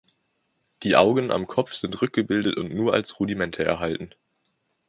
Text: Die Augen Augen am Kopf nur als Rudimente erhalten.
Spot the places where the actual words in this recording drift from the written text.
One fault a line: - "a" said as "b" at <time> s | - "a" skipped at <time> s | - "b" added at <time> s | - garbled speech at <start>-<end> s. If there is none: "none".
- "Augen" skipped at 1.3 s
- "sind rückgebildet und" added at 1.8 s